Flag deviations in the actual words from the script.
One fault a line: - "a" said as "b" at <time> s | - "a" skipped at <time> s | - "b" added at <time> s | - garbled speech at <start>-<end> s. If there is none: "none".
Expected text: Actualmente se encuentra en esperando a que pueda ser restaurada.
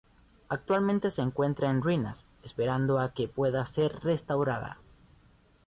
- "ruinas" added at 1.8 s